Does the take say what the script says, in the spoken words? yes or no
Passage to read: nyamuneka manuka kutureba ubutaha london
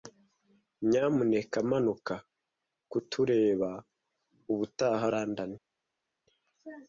yes